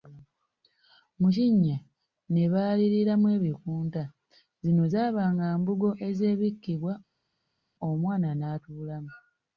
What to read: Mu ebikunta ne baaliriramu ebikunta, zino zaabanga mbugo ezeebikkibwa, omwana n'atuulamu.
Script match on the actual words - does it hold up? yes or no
no